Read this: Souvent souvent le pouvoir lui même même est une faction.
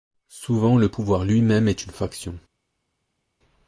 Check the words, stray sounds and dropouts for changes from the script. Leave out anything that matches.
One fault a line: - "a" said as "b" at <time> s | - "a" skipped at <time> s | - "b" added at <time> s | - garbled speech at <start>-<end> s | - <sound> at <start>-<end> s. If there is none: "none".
- "souvent" skipped at 0.8 s
- "même" skipped at 1.7 s